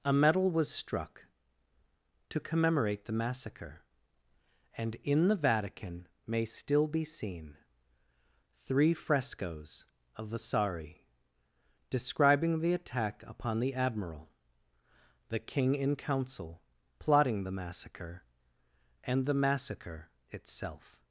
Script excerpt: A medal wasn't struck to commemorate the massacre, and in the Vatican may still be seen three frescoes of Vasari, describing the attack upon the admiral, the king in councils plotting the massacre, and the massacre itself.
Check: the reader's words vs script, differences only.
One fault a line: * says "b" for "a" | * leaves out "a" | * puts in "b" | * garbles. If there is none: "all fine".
* says "was" for "wasn't"
* says "council" for "councils"